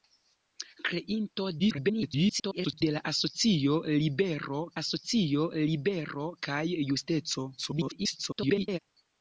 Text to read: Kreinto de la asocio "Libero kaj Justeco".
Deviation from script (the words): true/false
true